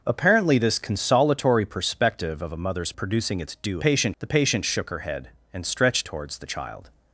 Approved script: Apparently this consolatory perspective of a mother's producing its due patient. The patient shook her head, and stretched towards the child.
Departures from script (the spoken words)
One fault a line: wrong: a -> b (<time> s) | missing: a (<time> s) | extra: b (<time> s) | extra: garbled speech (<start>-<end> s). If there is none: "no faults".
no faults